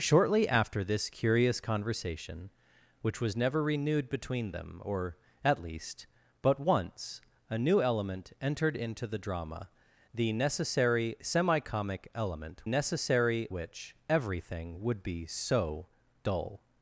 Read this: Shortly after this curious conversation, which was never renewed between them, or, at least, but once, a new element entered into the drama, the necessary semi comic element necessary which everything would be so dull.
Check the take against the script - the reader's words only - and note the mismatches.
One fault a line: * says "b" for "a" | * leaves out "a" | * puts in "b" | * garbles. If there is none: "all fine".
all fine